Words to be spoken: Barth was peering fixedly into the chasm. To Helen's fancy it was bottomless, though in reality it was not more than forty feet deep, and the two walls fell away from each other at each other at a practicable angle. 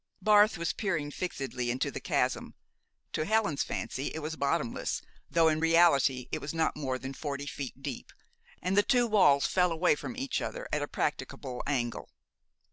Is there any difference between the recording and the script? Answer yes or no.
yes